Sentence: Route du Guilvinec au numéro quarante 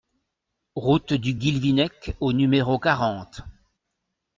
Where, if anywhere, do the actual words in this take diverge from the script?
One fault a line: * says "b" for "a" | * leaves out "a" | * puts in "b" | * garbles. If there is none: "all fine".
all fine